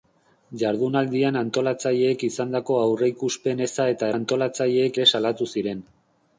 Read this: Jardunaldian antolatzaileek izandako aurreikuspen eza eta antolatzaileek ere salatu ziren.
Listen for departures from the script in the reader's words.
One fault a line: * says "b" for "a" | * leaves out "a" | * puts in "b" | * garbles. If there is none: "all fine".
all fine